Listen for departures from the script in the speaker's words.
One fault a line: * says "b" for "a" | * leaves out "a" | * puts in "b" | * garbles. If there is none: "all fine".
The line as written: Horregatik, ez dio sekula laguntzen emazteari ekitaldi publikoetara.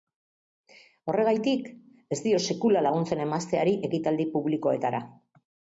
all fine